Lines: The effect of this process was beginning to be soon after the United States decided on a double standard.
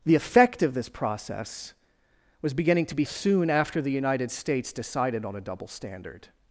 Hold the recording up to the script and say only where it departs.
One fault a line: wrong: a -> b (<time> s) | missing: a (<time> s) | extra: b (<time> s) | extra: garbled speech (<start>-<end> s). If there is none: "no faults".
no faults